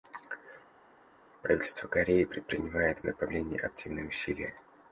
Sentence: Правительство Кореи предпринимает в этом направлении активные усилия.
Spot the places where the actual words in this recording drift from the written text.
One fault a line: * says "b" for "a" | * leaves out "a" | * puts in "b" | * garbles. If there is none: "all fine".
* leaves out "этом"